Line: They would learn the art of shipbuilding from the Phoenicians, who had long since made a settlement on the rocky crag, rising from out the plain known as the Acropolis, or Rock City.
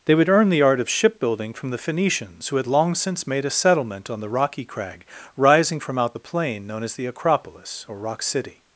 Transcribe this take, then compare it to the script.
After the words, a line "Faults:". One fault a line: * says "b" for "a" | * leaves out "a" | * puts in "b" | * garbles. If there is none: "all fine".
They would earn the art of shipbuilding from the Phoenicians, who had long since made a settlement on the rocky crag, rising from out the plain known as the Acropolis, or Rock City.
Faults:
* says "earn" for "learn"